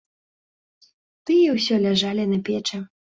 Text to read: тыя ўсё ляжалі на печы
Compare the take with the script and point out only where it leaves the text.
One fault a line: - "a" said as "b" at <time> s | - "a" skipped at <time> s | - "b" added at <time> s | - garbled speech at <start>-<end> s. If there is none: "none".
none